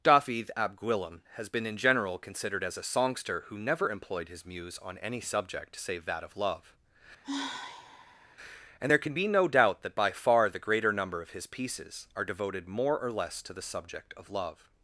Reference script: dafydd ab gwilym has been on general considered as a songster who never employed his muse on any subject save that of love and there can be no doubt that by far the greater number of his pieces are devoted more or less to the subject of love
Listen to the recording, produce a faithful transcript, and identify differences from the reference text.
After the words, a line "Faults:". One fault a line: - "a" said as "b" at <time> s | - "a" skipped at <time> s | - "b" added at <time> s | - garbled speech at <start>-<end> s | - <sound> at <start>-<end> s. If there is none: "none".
dafydd ab gwilym has been in general considered as a songster who never employed his muse on any subject save that of love and there can be no doubt that by far the greater number of his pieces are devoted more or less to the subject of love
Faults:
- "on" said as "in" at 1.7 s
- sigh at 7.2-8.4 s